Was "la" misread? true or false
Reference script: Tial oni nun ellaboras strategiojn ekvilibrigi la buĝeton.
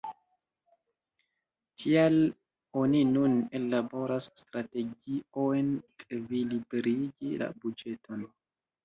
false